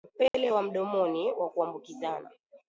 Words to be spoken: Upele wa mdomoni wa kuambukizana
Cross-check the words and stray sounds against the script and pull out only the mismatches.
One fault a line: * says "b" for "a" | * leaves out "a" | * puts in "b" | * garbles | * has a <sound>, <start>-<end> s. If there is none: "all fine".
* has a dropout, 0.3-0.3 s